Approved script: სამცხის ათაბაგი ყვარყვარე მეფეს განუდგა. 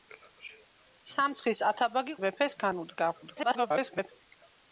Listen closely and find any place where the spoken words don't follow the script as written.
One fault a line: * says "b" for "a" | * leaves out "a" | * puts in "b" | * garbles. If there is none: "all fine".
* leaves out "ყვარყვარე"
* garbles